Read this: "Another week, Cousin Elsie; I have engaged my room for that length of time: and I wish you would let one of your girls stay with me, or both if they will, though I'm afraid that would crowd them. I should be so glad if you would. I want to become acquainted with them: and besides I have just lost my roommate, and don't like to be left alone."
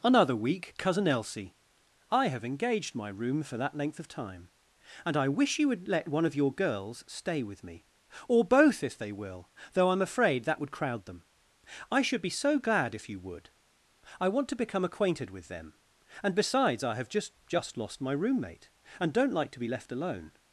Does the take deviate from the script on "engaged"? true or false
false